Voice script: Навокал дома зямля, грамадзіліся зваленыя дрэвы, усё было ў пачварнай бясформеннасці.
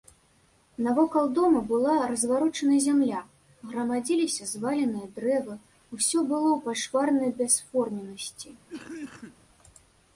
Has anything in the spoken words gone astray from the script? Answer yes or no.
yes